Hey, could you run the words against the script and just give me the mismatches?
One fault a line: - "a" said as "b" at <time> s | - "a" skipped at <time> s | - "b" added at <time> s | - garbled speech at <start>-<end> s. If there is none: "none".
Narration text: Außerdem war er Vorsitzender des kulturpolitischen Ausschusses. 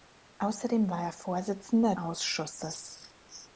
- "des kulturpolitischen" skipped at 1.9 s